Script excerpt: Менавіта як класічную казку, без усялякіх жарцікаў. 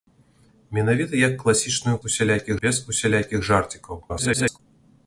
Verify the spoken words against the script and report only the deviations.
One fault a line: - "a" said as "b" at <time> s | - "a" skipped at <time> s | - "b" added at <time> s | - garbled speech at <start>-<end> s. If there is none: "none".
- "казку" said as "усялякіх" at 2.1 s
- garbled speech at 4.1-4.6 s